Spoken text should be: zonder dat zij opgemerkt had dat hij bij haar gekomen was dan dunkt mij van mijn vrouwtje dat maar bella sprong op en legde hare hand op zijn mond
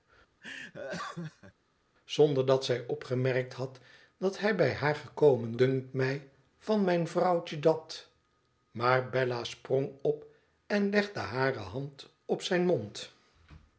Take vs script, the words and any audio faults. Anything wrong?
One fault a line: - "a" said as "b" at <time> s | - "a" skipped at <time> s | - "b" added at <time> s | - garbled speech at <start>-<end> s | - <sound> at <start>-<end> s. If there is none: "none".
- laugh at 0.4-1.5 s
- "was dan" skipped at 5.6 s